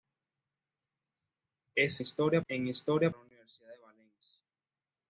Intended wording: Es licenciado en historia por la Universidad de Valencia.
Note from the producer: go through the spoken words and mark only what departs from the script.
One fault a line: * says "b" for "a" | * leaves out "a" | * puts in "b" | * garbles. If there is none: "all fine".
* says "historia" for "licenciado"
* leaves out "por"